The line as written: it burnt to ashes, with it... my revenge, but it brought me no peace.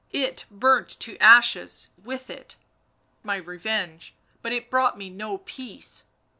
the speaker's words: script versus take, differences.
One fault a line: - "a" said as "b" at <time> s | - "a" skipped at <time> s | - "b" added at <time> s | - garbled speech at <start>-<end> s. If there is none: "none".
none